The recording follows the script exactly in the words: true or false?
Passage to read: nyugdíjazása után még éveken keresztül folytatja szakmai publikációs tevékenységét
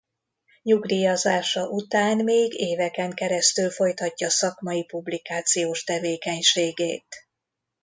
true